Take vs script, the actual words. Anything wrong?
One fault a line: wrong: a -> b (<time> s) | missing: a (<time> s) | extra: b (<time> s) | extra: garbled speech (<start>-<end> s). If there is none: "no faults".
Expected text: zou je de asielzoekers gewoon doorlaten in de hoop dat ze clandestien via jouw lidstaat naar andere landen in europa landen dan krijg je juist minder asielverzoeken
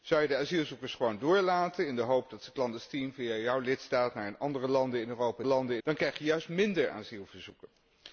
no faults